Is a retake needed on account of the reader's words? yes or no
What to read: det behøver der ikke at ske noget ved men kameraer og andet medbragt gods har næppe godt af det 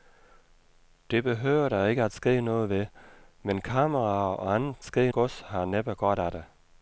yes